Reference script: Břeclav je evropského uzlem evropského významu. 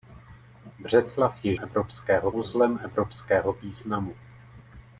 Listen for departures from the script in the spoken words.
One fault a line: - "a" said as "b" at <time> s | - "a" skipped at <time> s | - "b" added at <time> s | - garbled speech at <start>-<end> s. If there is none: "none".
none